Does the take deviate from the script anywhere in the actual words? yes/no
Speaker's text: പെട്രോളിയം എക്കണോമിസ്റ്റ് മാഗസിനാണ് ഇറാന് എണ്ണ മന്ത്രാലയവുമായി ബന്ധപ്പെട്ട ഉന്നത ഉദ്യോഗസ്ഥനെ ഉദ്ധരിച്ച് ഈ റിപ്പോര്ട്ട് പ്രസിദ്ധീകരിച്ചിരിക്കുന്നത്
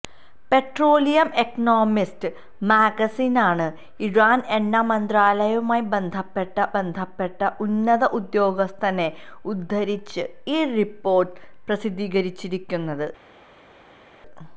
yes